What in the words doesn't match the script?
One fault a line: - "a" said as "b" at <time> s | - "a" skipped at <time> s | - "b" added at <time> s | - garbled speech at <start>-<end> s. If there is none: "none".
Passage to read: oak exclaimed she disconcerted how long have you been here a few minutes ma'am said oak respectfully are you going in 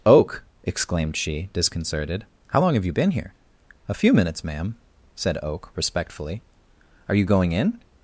none